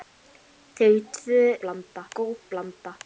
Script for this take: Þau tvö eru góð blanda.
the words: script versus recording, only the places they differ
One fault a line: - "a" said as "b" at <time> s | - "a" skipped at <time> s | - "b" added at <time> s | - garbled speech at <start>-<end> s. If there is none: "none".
- "eru" said as "blanda" at 1.6 s